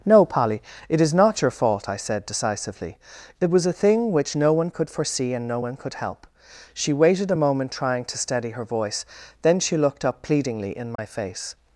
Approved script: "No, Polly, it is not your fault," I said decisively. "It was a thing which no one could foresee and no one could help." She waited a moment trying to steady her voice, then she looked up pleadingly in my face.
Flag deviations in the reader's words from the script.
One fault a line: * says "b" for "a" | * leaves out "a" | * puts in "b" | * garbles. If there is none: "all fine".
all fine